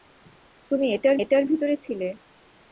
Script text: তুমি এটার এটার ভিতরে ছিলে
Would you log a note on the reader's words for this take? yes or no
no